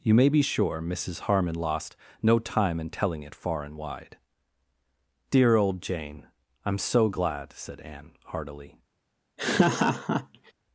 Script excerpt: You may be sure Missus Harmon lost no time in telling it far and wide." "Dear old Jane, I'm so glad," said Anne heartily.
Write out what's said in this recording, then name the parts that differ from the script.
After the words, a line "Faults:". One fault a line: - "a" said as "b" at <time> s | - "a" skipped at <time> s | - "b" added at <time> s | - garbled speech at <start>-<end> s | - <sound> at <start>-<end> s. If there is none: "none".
You may be sure Missus Harmon lost no time in telling it far and wide." "Dear old Jane, I'm so glad," said Anne heartily.
Faults:
- laugh at 9.4-10.5 s